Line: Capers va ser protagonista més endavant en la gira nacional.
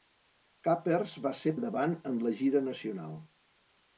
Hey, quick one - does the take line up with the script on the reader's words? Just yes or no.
no